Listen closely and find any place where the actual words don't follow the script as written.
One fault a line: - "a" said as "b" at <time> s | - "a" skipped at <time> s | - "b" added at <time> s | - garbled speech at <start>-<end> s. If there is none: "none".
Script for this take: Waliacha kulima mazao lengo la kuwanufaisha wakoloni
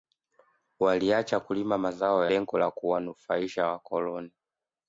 none